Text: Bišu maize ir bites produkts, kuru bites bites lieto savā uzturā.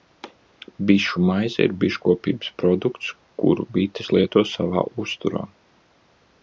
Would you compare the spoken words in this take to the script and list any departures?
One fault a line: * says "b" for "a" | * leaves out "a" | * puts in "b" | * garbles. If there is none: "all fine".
* says "biškopības" for "bites"
* leaves out "bites"